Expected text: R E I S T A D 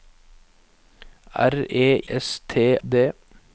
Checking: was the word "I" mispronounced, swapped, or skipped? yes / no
yes